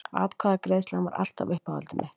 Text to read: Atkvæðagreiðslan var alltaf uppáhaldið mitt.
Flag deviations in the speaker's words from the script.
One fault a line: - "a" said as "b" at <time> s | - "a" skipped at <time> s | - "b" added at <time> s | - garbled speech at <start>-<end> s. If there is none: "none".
none